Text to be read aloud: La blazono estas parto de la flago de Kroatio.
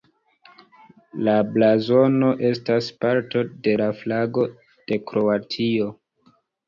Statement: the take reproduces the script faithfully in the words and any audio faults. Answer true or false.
true